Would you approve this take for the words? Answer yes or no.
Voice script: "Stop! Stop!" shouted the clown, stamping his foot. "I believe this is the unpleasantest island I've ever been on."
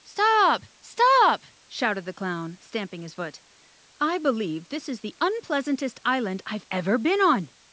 yes